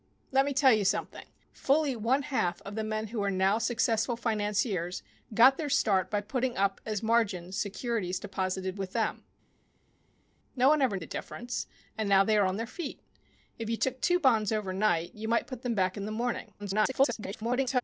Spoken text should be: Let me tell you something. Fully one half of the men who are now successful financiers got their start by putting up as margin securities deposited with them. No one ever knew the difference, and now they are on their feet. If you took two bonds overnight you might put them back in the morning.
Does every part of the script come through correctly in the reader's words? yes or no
no